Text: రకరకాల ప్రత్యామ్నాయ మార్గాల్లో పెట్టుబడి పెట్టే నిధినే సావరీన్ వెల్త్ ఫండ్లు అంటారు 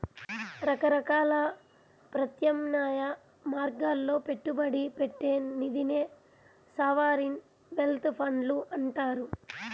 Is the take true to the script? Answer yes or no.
yes